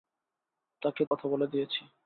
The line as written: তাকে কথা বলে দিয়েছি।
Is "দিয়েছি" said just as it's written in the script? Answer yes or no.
yes